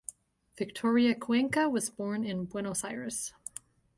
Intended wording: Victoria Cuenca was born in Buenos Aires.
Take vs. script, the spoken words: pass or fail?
pass